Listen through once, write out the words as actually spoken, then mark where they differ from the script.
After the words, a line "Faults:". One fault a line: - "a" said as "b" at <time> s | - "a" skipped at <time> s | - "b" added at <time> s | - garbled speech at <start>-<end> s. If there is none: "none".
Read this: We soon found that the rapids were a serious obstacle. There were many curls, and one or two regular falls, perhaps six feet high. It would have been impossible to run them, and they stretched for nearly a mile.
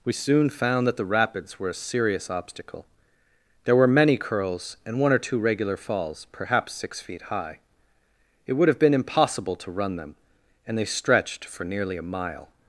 We soon found that the rapids were a serious obstacle. There were many curls, and one or two regular falls, perhaps six feet high. It would have been impossible to run them, and they stretched for nearly a mile.
Faults:
none